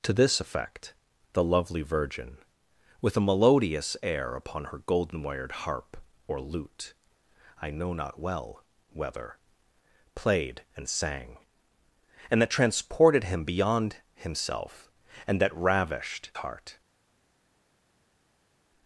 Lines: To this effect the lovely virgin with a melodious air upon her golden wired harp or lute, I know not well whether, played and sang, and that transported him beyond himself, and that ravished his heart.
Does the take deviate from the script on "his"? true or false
true